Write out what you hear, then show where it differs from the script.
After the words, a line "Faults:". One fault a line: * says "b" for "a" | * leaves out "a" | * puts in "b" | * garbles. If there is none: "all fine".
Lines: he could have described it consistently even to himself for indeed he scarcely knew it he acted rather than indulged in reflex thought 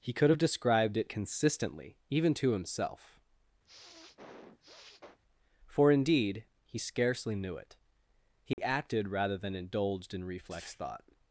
he could have described it consistently even to himself for indeed he scarcely knew it he acted rather than indulged in reflex thought
Faults:
all fine